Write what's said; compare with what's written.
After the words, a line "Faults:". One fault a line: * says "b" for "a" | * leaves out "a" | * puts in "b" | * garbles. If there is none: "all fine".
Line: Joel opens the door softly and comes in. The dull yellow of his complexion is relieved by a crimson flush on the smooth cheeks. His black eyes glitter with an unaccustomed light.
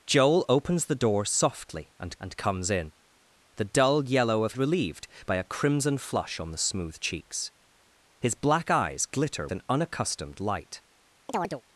Joel opens the door softly and and comes in. The dull yellow of relieved by a crimson flush on the smooth cheeks. His black eyes glitter an unaccustomed light.
Faults:
* puts in "and"
* leaves out "his complexion is"
* leaves out "with"